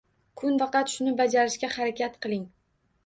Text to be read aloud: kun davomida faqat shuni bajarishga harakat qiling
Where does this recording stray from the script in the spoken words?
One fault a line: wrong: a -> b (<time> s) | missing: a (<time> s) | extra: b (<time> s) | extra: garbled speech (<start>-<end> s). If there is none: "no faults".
missing: davomida (0.6 s)